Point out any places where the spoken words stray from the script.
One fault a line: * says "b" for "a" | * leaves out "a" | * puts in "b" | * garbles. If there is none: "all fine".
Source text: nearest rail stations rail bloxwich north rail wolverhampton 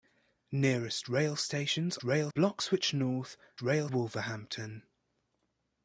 all fine